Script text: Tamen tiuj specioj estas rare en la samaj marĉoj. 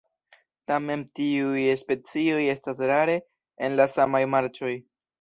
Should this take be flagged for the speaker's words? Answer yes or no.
no